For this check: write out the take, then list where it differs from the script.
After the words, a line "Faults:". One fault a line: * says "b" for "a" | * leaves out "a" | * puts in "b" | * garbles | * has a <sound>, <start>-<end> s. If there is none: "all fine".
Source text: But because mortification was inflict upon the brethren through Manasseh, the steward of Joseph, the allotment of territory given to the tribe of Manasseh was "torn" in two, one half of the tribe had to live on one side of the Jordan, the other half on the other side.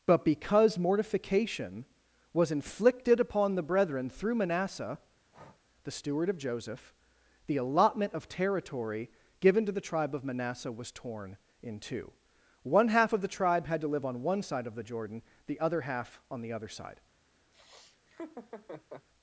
But because mortification was inflicted upon the brethren through Manasseh, the steward of Joseph, the allotment of territory given to the tribe of Manasseh was "torn" in two, one half of the tribe had to live on one side of the Jordan, the other half on the other side.
Faults:
* says "inflicted" for "inflict"
* has a breath, 5.3-5.6 s
* has a laugh, 17.5-19.1 s